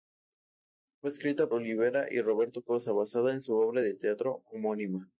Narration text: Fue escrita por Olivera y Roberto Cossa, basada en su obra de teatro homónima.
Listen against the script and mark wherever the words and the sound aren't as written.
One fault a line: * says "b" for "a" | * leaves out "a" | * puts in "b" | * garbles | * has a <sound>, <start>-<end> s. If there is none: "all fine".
* leaves out "por"